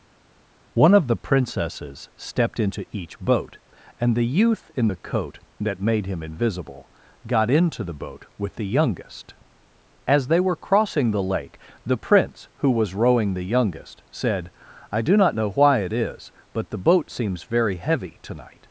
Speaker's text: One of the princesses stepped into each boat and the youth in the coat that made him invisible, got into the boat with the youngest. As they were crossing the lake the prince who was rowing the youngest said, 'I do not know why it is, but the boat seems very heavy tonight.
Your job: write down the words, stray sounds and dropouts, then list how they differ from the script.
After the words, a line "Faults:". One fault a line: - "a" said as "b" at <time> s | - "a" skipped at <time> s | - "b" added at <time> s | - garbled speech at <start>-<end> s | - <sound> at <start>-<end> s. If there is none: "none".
One of the princesses stepped into each boat and the youth in the coat that made him invisible, got into the boat with the youngest. As they were crossing the lake the prince who was rowing the youngest said, 'I do not know why it is, but the boat seems very heavy tonight.
Faults:
none